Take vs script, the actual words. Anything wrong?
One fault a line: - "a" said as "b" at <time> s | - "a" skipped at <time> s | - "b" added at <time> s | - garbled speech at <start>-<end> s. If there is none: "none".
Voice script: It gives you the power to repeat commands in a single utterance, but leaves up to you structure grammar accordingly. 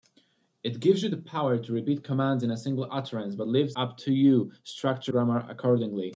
none